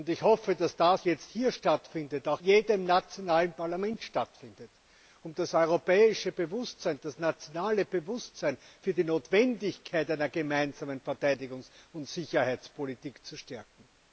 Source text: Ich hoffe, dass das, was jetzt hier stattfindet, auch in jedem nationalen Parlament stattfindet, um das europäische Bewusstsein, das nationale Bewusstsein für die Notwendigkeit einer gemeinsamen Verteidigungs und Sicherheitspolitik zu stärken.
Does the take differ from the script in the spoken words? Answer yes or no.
yes